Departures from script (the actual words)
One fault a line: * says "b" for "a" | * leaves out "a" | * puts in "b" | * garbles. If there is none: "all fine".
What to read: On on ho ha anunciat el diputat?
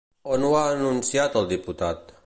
* leaves out "on"